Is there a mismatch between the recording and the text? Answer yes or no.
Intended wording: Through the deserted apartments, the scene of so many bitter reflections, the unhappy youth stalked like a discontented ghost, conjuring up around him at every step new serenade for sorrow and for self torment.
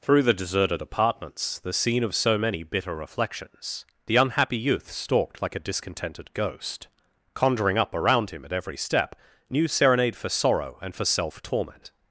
no